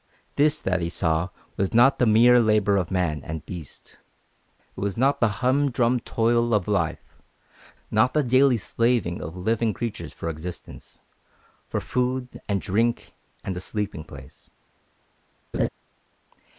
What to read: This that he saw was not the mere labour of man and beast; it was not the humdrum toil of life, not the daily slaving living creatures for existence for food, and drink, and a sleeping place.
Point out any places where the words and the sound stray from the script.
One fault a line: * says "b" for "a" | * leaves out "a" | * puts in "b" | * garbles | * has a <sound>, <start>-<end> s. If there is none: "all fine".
* puts in "of"
* has a laugh, 15.5-15.7 s